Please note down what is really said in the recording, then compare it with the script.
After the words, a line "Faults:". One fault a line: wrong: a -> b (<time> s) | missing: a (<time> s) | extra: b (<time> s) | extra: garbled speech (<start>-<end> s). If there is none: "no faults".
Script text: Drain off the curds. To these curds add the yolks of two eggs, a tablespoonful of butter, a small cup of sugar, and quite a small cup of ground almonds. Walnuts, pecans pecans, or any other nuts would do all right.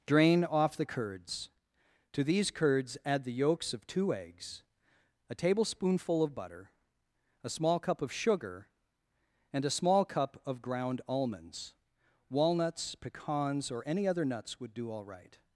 Drain off the curds. To these curds add the yolks of two eggs, a tablespoonful of butter, a small cup of sugar, and a small cup of ground almonds. Walnuts, pecans, or any other nuts would do all right.
Faults:
missing: quite (9.6 s)
missing: pecans (13.7 s)